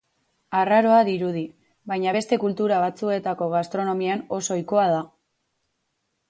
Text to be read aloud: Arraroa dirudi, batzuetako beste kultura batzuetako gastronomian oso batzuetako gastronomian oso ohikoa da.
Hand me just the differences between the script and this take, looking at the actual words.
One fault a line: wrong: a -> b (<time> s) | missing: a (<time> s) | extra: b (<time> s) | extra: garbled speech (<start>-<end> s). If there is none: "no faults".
wrong: batzuetako -> baina (1.9 s)
missing: batzuetako gastronomian oso (4.6 s)